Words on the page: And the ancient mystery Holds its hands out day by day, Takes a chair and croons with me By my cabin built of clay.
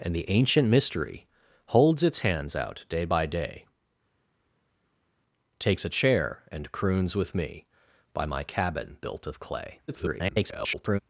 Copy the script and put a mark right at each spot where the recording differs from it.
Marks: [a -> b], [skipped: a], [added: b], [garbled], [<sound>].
And the ancient mystery Holds its hands out day by day, Takes a chair and croons with me By my cabin built of clay. [garbled]